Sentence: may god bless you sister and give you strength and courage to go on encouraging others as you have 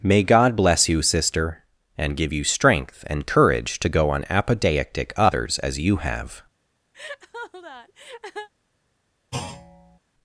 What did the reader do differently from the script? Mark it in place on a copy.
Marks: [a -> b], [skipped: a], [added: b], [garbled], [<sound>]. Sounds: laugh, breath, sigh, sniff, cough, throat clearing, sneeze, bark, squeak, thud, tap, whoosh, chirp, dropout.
may god bless you sister and give you strength and courage to go on [encouraging -> apodeictic] others as you have [laugh] [thud]